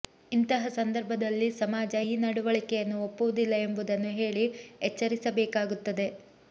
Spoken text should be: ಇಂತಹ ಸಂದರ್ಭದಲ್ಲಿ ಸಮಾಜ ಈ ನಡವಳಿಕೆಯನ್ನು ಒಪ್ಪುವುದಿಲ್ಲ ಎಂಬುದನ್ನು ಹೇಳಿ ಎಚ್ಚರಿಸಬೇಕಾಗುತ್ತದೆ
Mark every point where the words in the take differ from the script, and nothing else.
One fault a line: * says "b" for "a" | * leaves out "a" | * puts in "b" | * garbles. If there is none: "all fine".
all fine